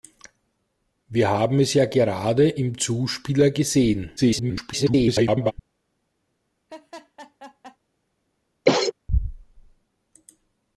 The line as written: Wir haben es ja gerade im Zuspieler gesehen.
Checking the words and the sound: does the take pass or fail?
fail